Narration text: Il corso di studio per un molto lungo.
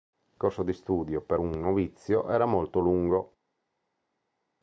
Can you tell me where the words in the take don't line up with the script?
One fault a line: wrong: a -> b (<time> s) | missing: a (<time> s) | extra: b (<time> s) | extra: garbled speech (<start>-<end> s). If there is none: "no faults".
extra: novizio era (1.5 s)